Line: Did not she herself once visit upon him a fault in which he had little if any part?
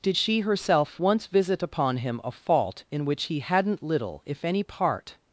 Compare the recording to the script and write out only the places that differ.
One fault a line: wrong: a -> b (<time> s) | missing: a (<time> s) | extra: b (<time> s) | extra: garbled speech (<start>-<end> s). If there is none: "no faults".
missing: not (0.2 s)
wrong: had -> hadn't (3.4 s)